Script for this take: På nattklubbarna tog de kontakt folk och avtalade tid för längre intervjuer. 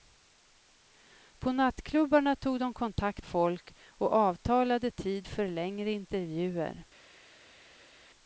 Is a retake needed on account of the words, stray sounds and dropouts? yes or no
no